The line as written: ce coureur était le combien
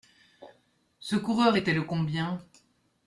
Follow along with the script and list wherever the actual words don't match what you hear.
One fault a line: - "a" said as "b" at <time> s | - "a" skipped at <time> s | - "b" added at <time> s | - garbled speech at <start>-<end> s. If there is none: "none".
none